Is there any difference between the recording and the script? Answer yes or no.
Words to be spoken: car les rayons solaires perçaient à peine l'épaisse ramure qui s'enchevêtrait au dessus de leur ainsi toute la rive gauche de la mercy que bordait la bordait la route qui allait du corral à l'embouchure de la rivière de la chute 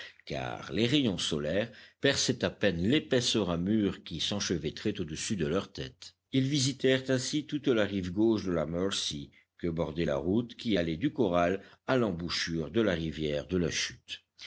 yes